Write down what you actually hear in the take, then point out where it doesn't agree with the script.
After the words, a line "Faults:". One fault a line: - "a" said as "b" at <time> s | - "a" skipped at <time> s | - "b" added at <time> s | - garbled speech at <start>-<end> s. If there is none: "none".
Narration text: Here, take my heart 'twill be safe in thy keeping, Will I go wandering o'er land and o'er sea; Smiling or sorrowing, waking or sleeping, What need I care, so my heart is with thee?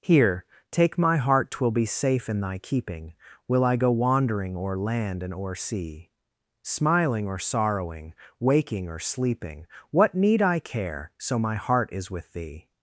Here, take my heart 'twill be safe in thy keeping, Will I go wandering o'er land and o'er sea; Smiling or sorrowing, waking or sleeping, What need I care, so my heart is with thee?
Faults:
none